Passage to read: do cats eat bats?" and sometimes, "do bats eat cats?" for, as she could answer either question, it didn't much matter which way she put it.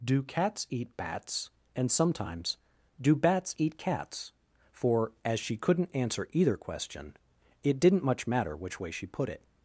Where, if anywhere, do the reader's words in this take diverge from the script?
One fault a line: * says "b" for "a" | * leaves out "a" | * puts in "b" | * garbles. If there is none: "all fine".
* says "couldn't" for "could"